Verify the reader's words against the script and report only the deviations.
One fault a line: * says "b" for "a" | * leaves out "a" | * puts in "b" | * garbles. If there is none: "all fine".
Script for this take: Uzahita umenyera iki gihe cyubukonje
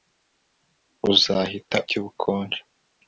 * leaves out "umenyera iki gihe"